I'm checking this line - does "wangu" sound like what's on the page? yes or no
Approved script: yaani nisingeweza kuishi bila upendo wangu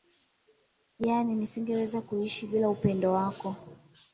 no